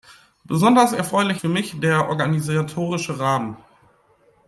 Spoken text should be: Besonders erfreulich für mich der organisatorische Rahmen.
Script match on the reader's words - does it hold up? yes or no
yes